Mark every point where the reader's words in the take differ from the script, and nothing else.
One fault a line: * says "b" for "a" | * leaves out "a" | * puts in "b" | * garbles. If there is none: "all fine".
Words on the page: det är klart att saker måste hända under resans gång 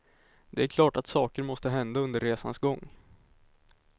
all fine